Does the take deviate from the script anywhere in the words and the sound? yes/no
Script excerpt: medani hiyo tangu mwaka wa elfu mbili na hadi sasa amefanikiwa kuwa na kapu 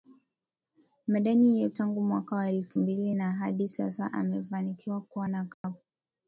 yes